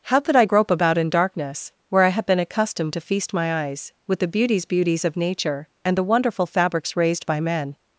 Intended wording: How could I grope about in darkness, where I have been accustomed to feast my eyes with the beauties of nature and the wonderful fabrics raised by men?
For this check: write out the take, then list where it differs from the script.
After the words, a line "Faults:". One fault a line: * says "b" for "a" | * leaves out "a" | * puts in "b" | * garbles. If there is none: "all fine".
How could I grope about in darkness, where I have been accustomed to feast my eyes with the beauties beauties of nature and the wonderful fabrics raised by men?
Faults:
* puts in "beauties"